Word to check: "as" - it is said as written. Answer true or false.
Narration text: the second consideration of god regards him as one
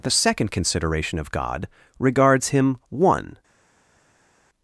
false